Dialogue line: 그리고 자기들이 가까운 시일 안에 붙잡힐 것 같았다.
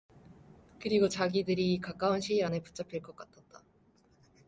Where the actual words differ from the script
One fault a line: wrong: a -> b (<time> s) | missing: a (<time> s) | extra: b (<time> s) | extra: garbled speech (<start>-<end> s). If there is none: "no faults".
no faults